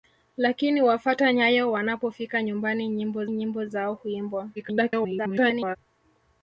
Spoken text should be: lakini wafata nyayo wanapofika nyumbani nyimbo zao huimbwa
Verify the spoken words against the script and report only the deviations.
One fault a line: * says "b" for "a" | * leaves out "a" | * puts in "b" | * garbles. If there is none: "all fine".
* puts in "nyimbo"
* garbles